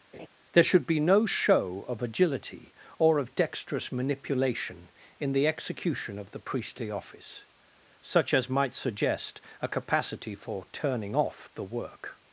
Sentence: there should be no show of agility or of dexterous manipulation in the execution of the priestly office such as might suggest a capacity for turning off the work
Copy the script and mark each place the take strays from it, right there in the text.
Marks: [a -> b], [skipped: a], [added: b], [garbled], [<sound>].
[laugh] there should be no show of agility or of dexterous manipulation in the execution of the priestly office such as might suggest a capacity for turning off the work